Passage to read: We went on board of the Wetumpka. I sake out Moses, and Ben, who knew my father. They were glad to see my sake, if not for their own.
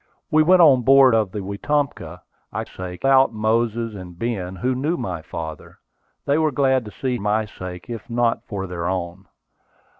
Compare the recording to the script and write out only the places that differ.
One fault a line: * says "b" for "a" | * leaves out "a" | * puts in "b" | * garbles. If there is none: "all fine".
all fine